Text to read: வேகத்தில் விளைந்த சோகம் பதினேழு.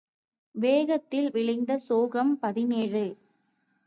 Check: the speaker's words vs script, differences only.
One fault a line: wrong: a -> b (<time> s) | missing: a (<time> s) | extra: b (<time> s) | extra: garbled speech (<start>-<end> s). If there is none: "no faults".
no faults